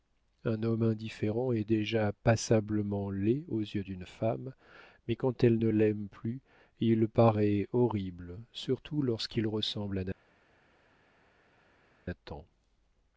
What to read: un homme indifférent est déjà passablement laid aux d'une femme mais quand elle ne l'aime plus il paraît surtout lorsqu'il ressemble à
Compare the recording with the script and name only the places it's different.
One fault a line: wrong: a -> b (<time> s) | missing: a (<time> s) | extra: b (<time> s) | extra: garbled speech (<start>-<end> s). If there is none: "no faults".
extra: yeux (3.6 s)
extra: horrible (7.7 s)